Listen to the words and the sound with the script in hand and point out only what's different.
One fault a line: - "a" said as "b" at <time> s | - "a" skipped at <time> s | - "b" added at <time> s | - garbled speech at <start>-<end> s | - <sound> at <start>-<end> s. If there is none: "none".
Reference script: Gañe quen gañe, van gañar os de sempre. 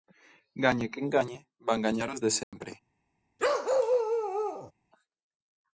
- dropout at 2.4-2.5 s
- bark at 3.4-4.7 s